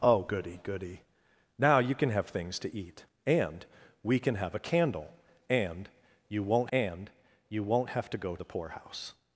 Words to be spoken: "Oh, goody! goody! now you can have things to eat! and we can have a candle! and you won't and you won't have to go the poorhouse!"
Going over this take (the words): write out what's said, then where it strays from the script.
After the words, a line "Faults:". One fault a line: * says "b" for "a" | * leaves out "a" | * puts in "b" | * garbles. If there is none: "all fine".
"Oh, goody! goody! now you can have things to eat! and we can have a candle! and you won't and you won't have to go the poorhouse!"
Faults:
all fine